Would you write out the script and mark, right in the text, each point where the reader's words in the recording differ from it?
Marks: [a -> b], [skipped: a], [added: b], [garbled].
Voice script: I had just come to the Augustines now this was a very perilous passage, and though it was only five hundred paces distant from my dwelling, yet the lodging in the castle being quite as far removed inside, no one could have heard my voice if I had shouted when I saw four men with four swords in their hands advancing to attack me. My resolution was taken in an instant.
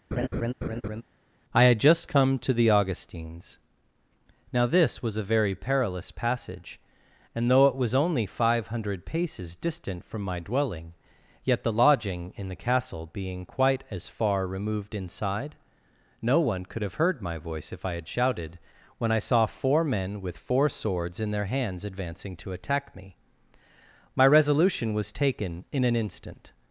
I had just come to the Augustines now this was a very perilous passage, and though it was only five hundred paces distant from my dwelling, yet the lodging in the castle being quite as far removed inside, no one could have heard my voice if I had shouted when I saw four men with four swords in their hands advancing to attack me. My resolution was taken in an instant.